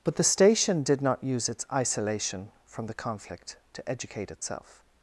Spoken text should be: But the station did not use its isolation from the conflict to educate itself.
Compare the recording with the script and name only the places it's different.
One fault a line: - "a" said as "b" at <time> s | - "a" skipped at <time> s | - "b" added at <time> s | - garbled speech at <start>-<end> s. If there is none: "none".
none